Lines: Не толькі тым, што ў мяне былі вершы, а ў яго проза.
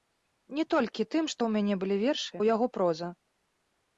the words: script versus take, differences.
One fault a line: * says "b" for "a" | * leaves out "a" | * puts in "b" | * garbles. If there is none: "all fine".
* leaves out "а"